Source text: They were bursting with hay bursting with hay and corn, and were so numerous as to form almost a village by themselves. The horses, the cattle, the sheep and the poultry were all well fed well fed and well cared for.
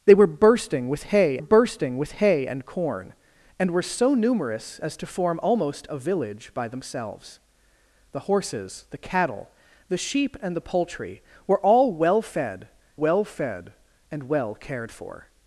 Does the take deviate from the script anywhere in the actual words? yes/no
no